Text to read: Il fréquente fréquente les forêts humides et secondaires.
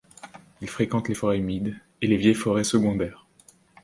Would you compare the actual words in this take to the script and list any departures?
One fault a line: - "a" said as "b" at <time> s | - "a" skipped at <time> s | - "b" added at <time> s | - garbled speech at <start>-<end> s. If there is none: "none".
- "fréquente" skipped at 1.1 s
- "les vieilles forêts" added at 2.1 s